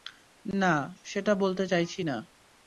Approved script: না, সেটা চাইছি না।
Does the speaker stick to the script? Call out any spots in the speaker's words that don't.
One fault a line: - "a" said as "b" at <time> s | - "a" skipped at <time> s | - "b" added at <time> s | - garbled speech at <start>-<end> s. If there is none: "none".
- "বলতে" added at 1.3 s